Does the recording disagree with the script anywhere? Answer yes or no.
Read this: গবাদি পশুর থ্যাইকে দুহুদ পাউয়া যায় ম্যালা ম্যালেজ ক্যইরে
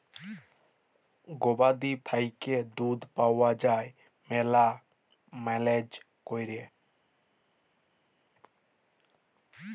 yes